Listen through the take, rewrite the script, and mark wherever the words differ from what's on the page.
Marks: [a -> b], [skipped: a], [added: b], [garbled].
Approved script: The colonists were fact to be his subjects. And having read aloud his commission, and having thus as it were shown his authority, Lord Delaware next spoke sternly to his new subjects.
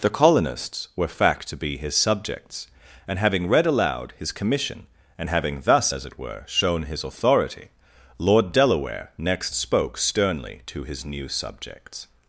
The colonists were fact to be his subjects. And having read aloud his commission, and having thus as it were shown his authority, Lord Delaware next spoke sternly to his new subjects.